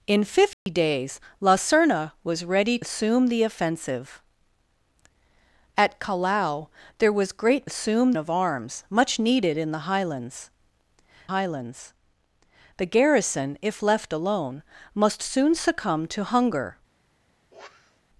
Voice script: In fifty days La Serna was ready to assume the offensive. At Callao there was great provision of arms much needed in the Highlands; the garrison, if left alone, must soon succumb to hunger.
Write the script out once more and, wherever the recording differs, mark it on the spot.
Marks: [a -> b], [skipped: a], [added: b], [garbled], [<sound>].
In fifty [dropout] days La Serna was ready [skipped: to] assume the offensive. At Callao there was great [provision -> assume] of arms much needed in the Highlands; [added: Highlands] the garrison, if left alone, must soon succumb to hunger. [sniff]